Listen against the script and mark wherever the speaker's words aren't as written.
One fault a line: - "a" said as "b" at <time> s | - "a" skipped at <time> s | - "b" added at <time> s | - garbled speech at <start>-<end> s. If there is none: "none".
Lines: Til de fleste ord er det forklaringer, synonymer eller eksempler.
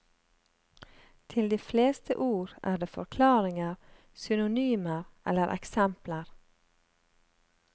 none